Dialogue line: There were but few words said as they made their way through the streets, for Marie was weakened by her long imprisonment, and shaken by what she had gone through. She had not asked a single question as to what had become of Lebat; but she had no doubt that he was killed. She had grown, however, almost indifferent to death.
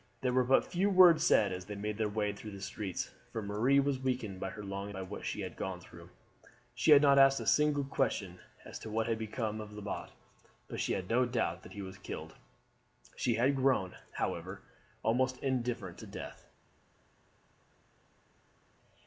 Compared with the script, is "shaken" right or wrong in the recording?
wrong